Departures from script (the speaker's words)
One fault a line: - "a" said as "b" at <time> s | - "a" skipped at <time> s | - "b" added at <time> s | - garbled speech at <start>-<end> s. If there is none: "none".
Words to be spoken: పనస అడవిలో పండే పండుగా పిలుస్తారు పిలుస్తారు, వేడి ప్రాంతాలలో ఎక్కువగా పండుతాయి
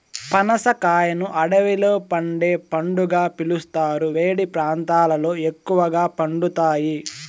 - "కాయను" added at 0.8 s
- "పిలుస్తారు" skipped at 4.1 s